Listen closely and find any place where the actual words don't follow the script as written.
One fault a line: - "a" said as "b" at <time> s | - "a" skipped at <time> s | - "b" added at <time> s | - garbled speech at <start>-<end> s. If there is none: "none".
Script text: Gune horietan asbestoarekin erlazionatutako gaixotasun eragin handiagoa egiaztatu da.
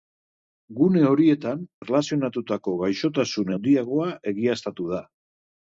- "asbestoarekin" skipped at 1.6 s
- "eragin" skipped at 3.5 s